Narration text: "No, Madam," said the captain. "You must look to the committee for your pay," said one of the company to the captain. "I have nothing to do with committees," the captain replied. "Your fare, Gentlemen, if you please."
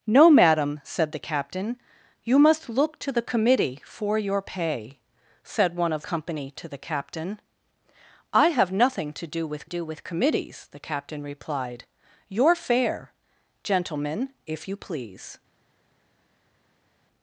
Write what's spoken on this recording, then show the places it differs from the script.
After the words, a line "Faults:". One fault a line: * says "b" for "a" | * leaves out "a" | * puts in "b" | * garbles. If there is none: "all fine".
"No, Madam," said the captain. "You must look to the committee for your pay," said one of company to the captain. "I have nothing to do with do with committees," the captain replied. "Your fare, Gentlemen, if you please."
Faults:
* leaves out "the"
* puts in "do with"